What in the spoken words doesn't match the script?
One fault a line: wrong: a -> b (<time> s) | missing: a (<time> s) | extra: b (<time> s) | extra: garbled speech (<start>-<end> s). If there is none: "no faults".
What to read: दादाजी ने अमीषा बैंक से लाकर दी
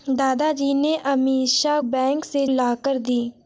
no faults